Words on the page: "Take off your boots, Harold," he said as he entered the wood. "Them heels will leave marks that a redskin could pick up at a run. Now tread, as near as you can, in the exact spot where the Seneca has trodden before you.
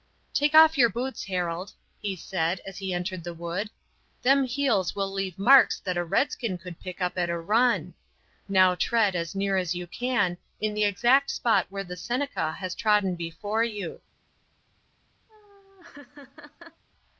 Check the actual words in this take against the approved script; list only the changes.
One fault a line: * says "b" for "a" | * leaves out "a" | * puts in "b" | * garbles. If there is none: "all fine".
all fine